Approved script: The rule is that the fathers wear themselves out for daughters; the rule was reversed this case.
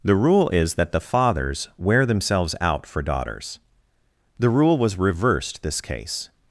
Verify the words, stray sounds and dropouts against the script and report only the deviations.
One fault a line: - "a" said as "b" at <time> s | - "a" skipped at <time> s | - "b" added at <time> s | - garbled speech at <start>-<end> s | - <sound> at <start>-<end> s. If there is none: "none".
none